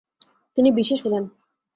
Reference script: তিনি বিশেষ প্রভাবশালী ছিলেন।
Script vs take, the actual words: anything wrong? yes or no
yes